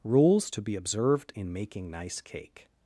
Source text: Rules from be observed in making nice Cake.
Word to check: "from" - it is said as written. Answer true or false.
false